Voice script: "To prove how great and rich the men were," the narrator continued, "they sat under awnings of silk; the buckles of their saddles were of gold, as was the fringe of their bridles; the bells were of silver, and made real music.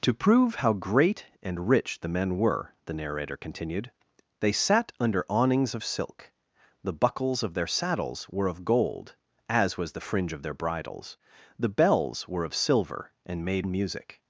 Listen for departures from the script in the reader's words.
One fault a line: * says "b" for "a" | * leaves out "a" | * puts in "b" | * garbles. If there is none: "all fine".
* leaves out "real"